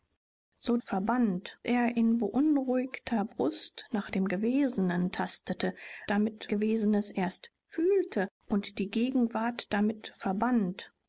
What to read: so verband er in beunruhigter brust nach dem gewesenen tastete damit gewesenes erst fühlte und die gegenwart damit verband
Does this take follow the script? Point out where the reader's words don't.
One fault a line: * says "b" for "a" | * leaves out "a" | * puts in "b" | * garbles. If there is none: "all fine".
all fine